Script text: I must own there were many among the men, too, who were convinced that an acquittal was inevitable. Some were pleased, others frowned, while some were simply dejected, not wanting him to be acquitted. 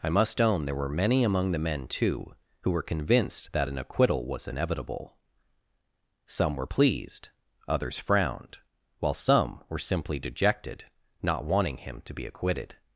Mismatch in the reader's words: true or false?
false